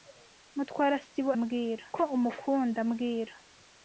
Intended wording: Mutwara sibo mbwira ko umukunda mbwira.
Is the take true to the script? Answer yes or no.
yes